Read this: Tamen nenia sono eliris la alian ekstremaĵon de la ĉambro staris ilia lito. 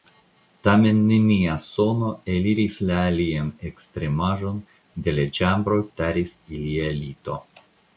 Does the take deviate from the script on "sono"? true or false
false